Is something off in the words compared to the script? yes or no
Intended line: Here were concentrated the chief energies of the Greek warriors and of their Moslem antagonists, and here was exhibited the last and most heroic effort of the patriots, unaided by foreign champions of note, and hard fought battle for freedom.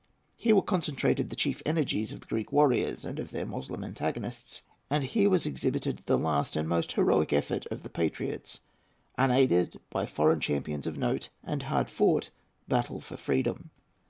no